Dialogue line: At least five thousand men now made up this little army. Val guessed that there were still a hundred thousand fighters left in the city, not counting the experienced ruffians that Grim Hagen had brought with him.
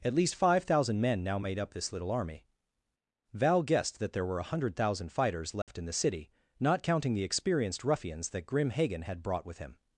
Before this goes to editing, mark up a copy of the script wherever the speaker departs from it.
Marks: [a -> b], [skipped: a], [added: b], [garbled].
At least five thousand men now made up this little army. Val guessed that there were [skipped: still] a hundred thousand fighters left in the city, not counting the experienced ruffians that Grim Hagen had brought with him.